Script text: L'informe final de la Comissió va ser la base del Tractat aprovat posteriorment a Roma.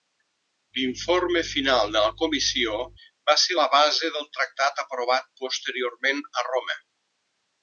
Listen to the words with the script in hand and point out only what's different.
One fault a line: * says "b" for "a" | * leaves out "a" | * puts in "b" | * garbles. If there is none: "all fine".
all fine